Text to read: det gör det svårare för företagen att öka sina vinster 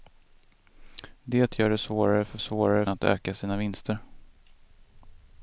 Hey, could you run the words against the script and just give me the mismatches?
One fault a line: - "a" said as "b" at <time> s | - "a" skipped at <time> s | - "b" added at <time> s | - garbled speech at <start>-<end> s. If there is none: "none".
- "företagen" said as "svårare" at 2.4 s